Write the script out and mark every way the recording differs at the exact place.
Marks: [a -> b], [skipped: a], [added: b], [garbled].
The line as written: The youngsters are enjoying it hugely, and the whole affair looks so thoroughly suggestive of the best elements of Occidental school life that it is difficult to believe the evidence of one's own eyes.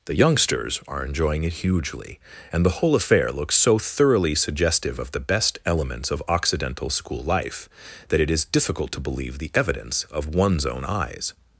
The youngsters are enjoying it hugely, and the whole affair looks so thoroughly suggestive of the best elements of Occidental school life that it is difficult to believe the evidence of one's own eyes.